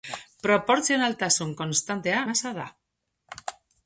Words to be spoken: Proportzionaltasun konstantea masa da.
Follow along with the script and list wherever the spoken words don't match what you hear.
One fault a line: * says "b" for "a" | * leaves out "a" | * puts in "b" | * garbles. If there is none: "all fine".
all fine